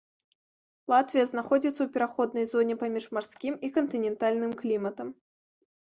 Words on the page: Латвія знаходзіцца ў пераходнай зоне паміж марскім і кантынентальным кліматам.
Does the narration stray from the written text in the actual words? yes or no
no